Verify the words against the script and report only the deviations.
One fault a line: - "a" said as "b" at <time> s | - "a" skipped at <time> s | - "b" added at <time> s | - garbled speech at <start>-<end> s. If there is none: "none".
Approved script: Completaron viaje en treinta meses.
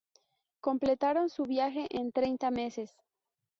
- "su" added at 1.3 s